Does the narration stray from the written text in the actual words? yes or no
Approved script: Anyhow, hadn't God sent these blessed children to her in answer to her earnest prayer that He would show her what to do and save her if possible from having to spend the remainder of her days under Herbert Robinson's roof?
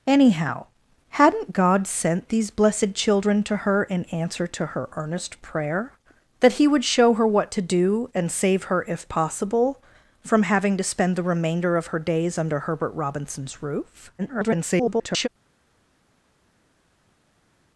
yes